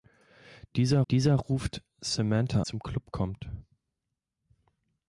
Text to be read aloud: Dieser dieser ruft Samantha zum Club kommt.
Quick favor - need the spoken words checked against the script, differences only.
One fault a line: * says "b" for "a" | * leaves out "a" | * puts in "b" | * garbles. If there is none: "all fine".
all fine